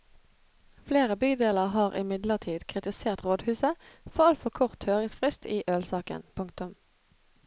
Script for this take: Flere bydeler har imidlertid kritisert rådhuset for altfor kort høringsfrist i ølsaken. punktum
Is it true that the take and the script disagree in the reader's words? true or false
false